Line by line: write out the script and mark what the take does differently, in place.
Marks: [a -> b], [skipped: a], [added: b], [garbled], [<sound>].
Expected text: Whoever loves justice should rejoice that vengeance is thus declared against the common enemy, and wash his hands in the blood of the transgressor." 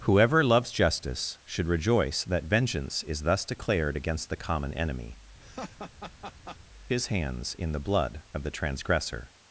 Whoever loves justice should rejoice that vengeance is thus declared against the common enemy, [skipped: and wash] [laugh] his hands in the blood of the transgressor."